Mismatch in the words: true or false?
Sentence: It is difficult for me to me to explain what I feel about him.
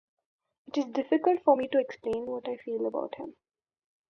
true